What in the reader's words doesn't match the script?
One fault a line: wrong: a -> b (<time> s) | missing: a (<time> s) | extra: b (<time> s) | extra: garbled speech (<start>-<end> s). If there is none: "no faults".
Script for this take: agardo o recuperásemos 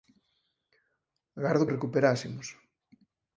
no faults